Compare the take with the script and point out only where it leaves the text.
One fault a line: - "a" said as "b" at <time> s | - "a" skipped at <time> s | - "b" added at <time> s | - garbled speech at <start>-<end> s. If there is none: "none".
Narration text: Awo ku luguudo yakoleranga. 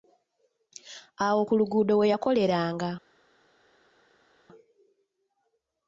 - "we" added at 2.0 s